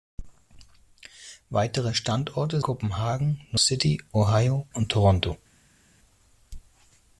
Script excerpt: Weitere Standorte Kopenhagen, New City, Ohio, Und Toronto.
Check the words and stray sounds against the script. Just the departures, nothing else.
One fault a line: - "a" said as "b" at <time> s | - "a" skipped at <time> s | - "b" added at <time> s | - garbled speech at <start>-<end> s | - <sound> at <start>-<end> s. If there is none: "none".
none